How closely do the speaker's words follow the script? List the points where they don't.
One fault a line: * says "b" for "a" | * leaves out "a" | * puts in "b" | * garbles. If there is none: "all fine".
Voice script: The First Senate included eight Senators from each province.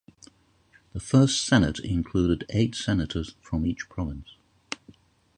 all fine